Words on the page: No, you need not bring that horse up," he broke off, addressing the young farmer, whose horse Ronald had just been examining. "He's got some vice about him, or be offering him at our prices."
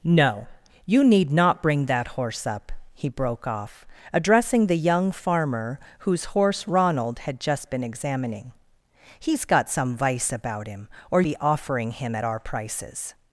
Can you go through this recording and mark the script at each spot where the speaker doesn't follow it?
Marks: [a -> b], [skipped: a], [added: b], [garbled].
No, you need not bring that horse up," he broke off, addressing the young farmer, whose horse Ronald had just been examining. "He's got some vice about him, or be offering him at our prices."